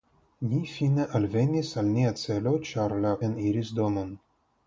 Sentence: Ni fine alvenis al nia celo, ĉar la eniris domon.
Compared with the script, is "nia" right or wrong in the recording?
right